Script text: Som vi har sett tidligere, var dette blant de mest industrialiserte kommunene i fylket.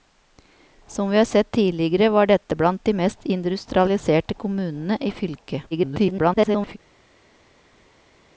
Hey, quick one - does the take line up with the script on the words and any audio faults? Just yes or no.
no